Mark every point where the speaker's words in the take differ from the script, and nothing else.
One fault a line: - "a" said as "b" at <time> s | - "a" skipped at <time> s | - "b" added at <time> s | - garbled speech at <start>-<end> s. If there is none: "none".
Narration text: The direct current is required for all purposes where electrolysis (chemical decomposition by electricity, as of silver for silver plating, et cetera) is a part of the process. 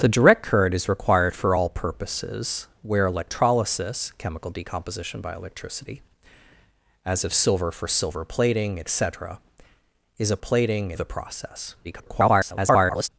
- "part" said as "plating" at 10.4 s
- garbled speech at 11.8-13.1 s